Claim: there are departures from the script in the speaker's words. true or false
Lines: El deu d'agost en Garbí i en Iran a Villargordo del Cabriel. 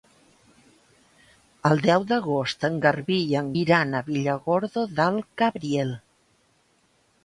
false